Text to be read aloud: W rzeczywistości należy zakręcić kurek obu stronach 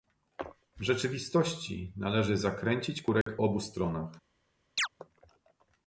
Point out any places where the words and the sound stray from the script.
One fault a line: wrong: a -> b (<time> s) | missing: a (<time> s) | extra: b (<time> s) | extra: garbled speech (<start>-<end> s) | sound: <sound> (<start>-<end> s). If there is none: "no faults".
sound: dropout (3.2-3.3 s)
sound: chirp (4.8-4.9 s)